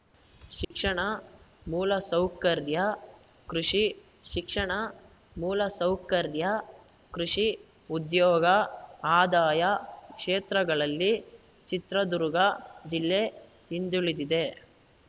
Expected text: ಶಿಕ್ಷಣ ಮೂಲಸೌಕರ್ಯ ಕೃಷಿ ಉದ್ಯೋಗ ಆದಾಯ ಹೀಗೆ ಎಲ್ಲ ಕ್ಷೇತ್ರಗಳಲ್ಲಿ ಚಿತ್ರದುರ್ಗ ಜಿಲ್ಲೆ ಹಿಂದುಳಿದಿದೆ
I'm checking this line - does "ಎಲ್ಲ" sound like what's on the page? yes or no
no